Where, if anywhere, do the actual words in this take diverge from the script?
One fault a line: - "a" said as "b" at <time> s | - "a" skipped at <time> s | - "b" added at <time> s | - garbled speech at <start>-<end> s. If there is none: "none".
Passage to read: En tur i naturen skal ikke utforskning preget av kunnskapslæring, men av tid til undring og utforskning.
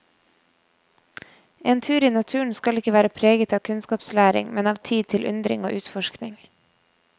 - "utforskning" said as "være" at 3.0 s